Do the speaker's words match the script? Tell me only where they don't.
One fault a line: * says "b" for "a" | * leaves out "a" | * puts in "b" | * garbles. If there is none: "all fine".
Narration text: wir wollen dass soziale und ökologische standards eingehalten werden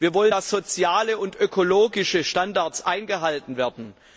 all fine